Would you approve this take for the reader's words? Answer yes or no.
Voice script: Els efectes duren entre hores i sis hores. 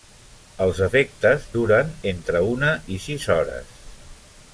no